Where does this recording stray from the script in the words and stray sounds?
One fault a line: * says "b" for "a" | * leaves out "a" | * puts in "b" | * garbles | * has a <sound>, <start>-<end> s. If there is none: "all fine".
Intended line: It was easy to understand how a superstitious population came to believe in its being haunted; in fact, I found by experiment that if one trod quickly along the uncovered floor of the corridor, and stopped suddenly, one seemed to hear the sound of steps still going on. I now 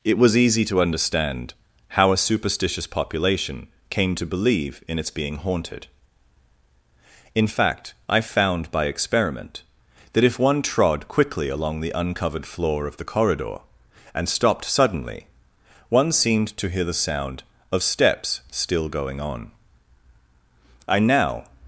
all fine